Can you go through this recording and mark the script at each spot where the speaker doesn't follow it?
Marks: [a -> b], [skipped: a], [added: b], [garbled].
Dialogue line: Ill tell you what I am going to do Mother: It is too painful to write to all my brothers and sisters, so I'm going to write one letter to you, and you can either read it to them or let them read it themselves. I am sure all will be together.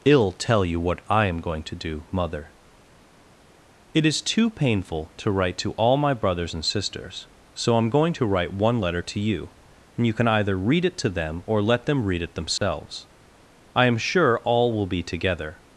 Ill tell you what I am going to do Mother: It is too painful to write to all my brothers and sisters, so I'm going to write one letter to you, and you can either read it to them or let them read it themselves. I am sure all will be together.